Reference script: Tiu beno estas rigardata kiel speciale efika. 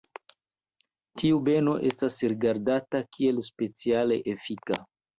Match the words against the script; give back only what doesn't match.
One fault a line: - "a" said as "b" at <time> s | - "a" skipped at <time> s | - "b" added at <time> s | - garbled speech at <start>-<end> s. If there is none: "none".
none